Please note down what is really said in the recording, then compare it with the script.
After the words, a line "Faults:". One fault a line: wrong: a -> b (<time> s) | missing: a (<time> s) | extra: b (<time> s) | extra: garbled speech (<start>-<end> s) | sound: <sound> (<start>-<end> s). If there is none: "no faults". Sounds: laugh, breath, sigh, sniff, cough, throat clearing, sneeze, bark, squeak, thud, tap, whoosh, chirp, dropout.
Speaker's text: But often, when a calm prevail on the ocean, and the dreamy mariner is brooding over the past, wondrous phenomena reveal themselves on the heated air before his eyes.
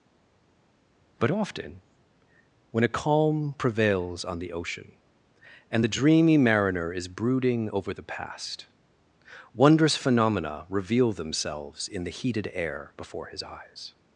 But often, when a calm prevails on the ocean, and the dreamy mariner is brooding over the past, wondrous phenomena reveal themselves in the heated air before his eyes.
Faults:
wrong: prevail -> prevails (3.6 s)
wrong: on -> in (11.9 s)